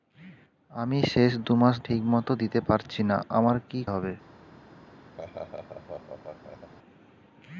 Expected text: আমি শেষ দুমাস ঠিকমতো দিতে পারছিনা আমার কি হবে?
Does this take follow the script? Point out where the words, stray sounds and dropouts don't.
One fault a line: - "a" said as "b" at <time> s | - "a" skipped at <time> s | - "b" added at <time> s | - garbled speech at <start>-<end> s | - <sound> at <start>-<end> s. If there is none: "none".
- laugh at 5.2-6.7 s